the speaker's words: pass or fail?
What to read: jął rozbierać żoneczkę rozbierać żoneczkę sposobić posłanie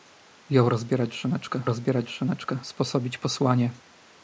pass